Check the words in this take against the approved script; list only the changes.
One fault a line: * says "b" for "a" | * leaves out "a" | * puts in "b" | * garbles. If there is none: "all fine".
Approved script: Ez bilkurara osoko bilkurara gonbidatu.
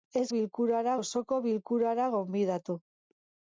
all fine